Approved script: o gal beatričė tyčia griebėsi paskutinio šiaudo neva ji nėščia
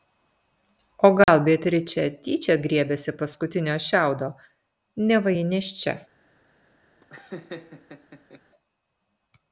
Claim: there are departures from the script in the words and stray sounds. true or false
true